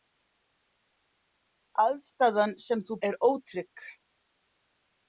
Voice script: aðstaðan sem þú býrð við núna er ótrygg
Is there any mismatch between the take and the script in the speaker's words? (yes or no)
yes